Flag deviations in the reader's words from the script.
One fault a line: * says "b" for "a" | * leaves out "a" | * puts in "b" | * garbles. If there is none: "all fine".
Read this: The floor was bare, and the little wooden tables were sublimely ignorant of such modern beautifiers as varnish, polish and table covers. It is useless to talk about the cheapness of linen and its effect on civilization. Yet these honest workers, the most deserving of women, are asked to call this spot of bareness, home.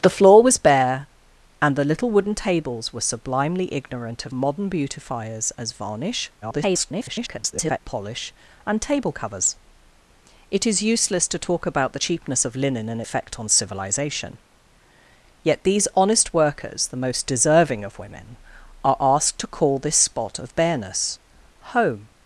* leaves out "such"
* garbles
* leaves out "its"